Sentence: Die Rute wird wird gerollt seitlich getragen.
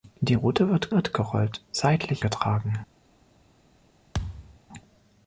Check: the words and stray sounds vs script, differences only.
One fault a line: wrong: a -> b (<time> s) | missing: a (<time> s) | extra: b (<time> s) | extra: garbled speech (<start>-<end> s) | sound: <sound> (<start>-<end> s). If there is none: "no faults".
sound: thud (4.1-4.6 s)